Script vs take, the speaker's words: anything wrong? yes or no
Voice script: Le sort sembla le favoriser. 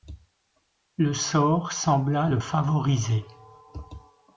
no